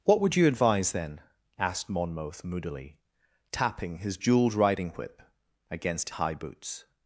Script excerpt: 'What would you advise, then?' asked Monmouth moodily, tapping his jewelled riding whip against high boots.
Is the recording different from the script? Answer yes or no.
no